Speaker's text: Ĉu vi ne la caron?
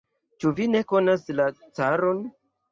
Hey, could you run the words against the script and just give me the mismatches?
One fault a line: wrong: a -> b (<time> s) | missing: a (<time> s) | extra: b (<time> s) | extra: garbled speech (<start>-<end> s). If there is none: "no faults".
extra: konas (0.9 s)